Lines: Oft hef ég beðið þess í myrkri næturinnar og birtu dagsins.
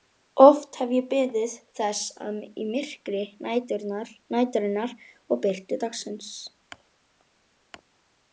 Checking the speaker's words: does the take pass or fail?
pass